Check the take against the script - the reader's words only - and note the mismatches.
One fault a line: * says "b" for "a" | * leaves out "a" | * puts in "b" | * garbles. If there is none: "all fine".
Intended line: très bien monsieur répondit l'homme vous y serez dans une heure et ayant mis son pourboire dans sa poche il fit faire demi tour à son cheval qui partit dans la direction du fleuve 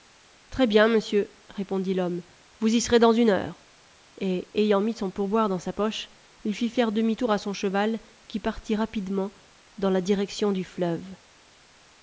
* puts in "rapidement"